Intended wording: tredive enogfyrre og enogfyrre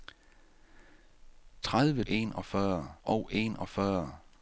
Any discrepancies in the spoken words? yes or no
no